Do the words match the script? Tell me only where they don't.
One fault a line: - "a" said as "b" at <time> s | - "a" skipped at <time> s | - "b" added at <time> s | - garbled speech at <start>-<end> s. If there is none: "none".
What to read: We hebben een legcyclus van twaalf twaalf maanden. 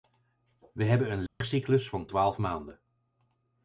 - "twaalf" skipped at 2.4 s